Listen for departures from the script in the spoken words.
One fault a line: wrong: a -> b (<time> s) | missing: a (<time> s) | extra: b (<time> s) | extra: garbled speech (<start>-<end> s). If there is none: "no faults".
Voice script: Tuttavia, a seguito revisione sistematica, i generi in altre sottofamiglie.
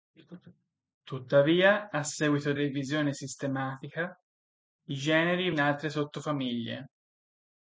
no faults